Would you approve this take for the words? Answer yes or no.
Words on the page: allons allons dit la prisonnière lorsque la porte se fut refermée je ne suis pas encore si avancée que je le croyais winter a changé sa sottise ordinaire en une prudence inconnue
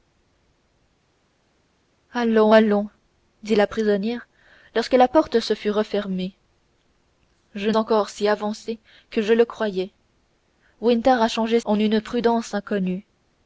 no